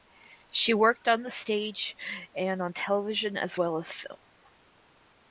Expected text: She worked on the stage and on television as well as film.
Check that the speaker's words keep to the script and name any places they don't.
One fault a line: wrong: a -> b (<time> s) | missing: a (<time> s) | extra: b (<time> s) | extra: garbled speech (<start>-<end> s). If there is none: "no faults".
no faults